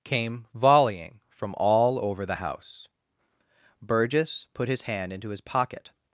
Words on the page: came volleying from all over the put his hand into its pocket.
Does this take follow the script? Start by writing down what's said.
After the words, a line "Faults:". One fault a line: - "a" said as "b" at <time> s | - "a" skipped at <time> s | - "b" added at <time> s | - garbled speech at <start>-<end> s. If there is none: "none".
came volleying from all over the house. Burgess put his hand into his pocket.
Faults:
- "house Burgess" added at 2.4 s
- "its" said as "his" at 5.3 s